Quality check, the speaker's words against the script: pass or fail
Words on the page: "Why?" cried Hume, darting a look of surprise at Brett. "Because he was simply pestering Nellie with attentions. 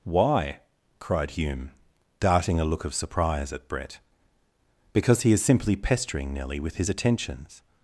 fail